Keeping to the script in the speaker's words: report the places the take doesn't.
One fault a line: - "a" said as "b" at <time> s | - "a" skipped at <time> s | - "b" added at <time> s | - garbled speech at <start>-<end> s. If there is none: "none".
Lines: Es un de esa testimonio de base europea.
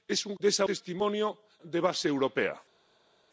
none